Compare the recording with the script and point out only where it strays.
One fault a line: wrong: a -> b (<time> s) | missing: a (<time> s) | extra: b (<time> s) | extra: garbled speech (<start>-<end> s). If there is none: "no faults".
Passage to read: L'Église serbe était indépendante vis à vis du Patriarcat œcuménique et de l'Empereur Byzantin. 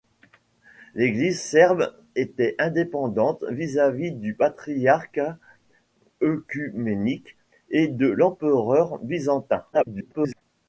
extra: garbled speech (9.7-10.4 s)